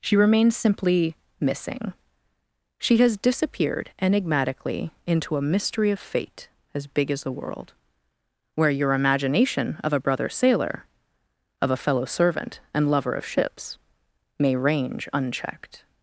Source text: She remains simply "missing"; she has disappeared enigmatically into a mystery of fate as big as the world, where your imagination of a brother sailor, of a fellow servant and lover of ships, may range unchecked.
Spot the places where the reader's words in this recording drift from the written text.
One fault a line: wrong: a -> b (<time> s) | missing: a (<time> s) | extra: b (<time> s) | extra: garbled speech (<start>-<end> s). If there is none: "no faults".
no faults